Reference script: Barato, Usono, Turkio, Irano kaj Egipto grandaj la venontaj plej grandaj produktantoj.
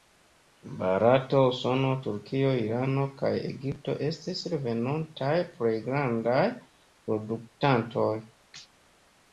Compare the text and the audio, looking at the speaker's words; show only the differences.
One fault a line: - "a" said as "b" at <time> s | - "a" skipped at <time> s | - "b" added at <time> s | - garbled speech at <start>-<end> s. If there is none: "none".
- "grandaj" said as "estis" at 4.1 s